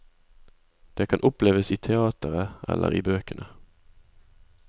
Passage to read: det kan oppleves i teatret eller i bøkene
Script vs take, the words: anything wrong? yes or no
no